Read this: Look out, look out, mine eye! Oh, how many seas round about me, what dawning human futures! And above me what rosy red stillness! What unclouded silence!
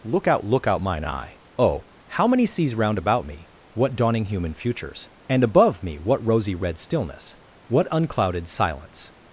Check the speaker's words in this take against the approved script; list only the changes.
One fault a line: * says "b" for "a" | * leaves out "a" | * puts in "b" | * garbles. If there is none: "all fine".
all fine